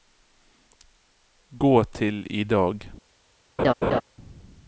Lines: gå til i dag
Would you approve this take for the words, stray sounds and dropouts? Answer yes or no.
no